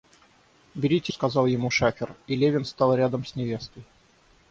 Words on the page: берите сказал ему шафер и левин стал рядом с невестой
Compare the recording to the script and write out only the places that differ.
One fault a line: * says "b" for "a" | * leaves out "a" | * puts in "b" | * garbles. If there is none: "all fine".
all fine